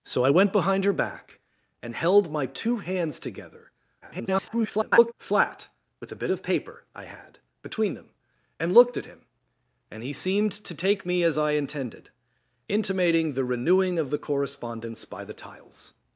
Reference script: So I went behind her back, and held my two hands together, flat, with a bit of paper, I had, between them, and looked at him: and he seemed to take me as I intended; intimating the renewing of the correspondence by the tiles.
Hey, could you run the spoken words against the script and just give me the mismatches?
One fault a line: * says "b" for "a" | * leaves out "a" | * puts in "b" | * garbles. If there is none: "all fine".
* garbles